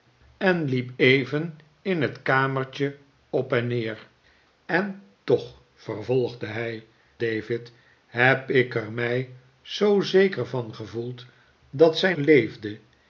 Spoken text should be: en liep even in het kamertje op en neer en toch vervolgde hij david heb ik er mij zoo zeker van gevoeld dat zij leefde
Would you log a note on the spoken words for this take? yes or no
no